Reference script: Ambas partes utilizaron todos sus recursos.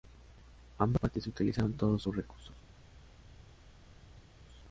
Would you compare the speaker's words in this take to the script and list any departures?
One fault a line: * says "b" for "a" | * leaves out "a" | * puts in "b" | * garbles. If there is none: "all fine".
all fine